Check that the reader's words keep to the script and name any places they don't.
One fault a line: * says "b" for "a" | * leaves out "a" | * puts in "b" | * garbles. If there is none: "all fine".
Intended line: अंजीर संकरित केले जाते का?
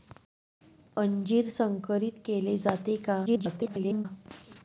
* garbles